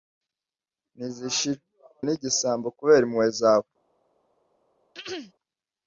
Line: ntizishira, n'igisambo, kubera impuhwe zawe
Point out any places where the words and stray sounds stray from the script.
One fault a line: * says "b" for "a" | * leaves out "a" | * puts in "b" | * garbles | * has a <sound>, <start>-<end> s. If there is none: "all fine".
* has a throat clearing, 4.9-5.3 s